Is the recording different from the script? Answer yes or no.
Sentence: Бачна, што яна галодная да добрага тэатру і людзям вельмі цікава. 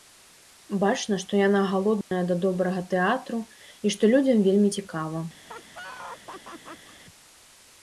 yes